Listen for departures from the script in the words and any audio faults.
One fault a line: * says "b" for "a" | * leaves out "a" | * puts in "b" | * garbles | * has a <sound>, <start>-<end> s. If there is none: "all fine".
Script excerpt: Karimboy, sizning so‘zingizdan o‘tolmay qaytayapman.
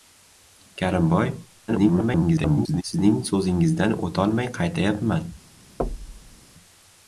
* garbles
* has a thud, 5.8-6.4 s